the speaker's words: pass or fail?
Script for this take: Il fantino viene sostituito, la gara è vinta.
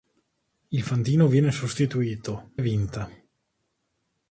fail